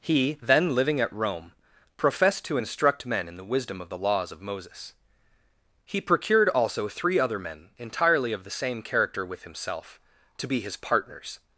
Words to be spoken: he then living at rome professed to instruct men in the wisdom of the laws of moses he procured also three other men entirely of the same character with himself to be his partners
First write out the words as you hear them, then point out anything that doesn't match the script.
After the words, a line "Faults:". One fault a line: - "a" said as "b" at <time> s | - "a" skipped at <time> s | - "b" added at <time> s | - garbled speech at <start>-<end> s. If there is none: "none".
he then living at rome professed to instruct men in the wisdom of the laws of moses he procured also three other men entirely of the same character with himself to be his partners
Faults:
none